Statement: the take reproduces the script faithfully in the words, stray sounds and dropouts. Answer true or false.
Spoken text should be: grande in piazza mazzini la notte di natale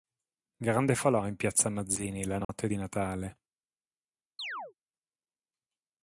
false